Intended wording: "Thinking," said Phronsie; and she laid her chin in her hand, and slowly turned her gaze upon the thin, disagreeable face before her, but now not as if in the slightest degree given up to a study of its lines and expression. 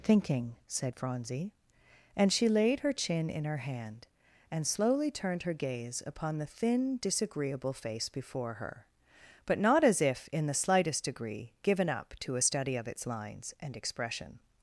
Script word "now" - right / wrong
wrong